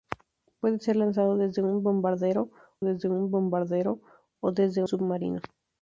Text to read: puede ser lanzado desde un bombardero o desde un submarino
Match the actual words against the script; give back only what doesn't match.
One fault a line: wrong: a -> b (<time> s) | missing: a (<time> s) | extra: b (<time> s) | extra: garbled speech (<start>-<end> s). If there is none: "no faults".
extra: desde un bombardero (2.8 s)
missing: un (4.8 s)